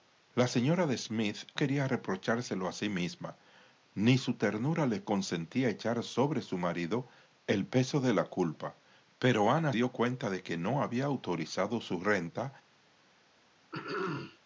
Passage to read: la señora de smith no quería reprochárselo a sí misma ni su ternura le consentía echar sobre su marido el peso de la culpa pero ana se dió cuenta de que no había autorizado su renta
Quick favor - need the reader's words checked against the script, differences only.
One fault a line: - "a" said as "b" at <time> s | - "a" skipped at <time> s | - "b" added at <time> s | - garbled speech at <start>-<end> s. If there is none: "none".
- "no" skipped at 1.4 s
- "se" skipped at 9.7 s